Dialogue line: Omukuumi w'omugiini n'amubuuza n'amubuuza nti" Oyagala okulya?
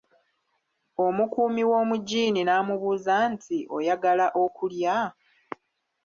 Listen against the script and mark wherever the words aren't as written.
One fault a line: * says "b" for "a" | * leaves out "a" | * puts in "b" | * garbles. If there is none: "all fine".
* leaves out "n'amubuuza"